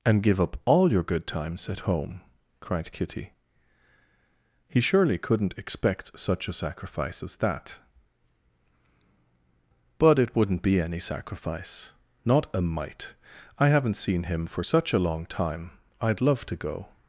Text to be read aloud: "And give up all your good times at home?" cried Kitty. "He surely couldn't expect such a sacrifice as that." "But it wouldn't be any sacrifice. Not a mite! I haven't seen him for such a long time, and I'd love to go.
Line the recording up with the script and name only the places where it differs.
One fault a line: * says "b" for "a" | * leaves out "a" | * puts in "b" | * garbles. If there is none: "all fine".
* leaves out "and"